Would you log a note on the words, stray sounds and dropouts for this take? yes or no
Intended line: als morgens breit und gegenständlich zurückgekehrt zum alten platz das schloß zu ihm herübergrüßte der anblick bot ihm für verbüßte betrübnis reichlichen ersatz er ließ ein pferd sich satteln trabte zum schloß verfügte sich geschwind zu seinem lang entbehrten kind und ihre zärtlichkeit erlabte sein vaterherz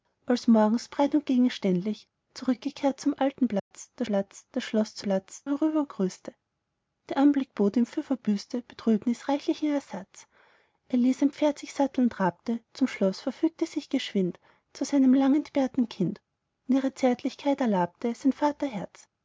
yes